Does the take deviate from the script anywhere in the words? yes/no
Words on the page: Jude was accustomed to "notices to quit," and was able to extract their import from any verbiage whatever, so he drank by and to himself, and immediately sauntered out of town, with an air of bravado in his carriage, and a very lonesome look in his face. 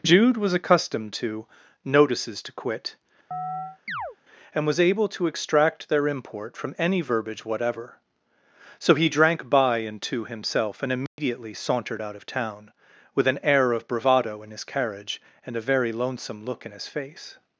no